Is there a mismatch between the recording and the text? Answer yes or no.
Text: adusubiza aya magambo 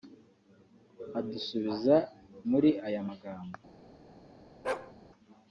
yes